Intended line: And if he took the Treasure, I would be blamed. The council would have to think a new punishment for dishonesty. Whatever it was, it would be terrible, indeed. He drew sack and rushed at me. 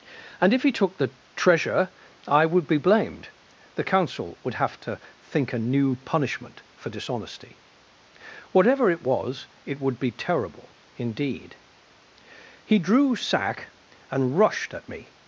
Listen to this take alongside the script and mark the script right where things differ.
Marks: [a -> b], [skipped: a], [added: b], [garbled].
And if he took the Treasure, I would be blamed. The council would have to think a new punishment for dishonesty. Whatever it was, it would be terrible, indeed. He drew sack and rushed at me.